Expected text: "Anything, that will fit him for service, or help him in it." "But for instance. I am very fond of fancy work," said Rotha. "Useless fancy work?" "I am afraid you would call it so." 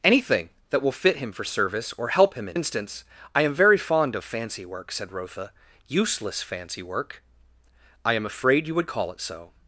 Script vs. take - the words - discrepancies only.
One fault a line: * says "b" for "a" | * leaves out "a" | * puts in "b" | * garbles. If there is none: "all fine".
* leaves out "it But for"